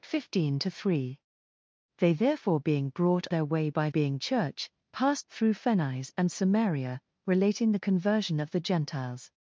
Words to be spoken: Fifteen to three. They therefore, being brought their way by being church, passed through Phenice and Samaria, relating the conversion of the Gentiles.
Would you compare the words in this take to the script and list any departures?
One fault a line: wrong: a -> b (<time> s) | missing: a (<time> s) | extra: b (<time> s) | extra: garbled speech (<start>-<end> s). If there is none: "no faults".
no faults